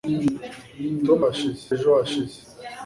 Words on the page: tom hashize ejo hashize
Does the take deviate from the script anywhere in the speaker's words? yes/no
no